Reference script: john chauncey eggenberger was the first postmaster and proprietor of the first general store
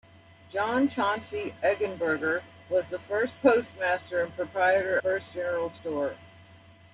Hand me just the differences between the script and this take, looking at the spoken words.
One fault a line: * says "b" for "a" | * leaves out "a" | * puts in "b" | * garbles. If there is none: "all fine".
* leaves out "of the"